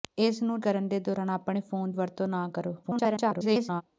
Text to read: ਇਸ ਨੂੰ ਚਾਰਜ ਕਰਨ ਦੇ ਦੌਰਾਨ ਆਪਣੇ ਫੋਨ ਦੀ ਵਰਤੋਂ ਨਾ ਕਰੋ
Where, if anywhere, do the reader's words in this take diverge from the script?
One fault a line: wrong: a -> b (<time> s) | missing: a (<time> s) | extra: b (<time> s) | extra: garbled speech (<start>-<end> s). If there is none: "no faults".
missing: ਚਾਰਜ (0.6 s)
missing: ਦੀ (1.9 s)
extra: garbled speech (2.8-3.8 s)